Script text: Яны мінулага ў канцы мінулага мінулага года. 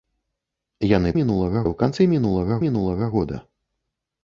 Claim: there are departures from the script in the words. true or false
false